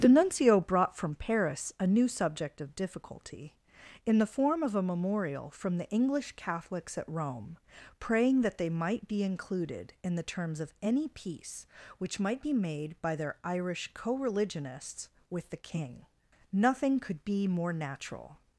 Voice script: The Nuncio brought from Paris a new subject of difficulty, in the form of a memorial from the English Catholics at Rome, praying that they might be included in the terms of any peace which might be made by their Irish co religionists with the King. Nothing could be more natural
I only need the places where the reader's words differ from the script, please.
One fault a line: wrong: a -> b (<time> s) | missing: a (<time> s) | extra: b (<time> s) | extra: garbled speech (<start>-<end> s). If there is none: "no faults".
no faults